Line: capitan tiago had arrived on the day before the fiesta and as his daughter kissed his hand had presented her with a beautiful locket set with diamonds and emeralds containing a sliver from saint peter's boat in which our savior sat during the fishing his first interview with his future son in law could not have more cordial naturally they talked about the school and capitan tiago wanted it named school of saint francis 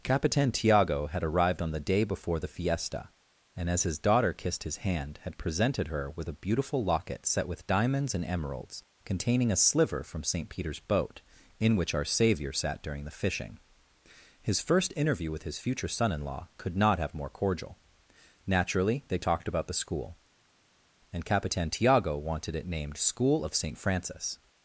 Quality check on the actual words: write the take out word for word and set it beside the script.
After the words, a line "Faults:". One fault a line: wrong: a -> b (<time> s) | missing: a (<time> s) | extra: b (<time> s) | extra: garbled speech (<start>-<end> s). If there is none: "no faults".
capitan tiago had arrived on the day before the fiesta and as his daughter kissed his hand had presented her with a beautiful locket set with diamonds and emeralds containing a sliver from saint peter's boat in which our savior sat during the fishing his first interview with his future son in law could not have more cordial naturally they talked about the school and capitan tiago wanted it named school of saint francis
Faults:
no faults